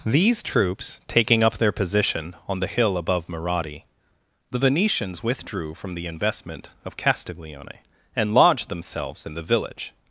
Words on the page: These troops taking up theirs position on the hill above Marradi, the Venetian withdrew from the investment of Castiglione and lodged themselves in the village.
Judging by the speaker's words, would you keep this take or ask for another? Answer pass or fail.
fail